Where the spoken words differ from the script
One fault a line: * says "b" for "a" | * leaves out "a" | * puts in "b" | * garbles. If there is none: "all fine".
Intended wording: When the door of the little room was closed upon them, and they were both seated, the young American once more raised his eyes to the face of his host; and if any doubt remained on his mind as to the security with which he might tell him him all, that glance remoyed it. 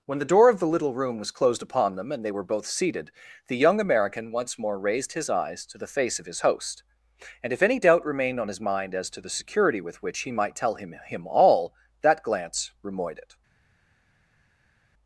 all fine